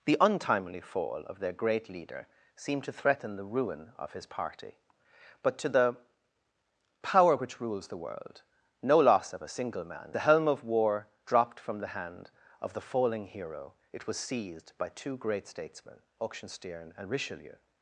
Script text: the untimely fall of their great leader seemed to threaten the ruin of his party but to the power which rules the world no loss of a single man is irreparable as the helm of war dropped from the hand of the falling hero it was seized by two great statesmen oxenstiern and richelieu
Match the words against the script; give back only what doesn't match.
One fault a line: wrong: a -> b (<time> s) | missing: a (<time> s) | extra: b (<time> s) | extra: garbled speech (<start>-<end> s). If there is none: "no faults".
missing: is irreparable as (10.2 s)